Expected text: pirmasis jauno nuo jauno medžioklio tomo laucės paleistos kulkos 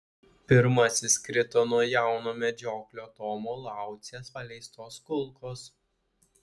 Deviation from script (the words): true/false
true